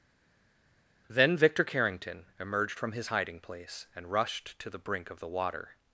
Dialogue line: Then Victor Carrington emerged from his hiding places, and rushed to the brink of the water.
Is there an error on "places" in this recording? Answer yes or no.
yes